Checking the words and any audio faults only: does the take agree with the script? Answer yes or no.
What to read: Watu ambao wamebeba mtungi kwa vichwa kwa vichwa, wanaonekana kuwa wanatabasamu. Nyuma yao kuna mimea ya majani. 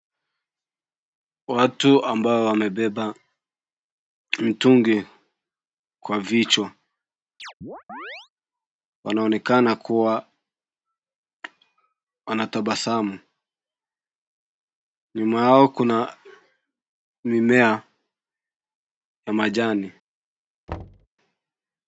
no